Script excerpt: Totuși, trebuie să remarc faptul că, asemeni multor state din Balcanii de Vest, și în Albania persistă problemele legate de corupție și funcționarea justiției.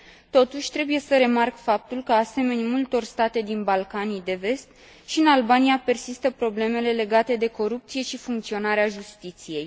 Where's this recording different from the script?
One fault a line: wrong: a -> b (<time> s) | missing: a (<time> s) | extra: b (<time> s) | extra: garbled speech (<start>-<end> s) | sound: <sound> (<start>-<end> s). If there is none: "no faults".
no faults